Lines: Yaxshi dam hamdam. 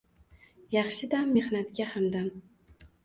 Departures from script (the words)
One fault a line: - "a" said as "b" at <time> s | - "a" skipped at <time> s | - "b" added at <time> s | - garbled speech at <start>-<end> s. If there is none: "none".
- "mehnatga" added at 1.4 s